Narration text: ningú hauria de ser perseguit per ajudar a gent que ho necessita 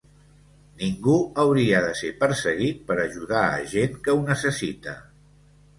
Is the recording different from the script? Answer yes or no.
no